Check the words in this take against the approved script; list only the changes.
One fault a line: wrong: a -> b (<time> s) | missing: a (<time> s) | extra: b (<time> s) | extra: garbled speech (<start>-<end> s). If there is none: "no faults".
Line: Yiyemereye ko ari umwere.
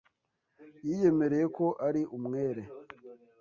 no faults